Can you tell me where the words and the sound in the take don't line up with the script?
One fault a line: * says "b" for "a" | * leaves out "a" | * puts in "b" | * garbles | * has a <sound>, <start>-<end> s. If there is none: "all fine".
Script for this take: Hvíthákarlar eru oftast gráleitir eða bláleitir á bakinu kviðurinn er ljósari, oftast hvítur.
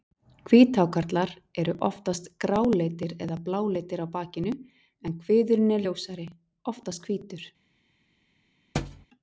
* puts in "en"
* has a thud, 8.7-9.1 s